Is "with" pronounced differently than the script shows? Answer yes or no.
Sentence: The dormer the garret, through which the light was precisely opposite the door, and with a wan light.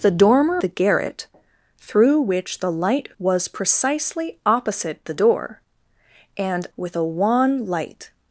no